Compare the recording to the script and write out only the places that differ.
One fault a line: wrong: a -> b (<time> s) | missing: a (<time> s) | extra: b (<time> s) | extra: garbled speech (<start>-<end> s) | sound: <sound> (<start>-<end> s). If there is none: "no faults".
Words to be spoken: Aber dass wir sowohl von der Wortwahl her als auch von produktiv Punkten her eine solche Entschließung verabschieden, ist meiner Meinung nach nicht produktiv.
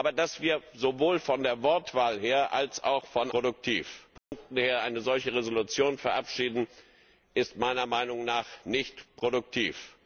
sound: dropout (4.2-4.3 s)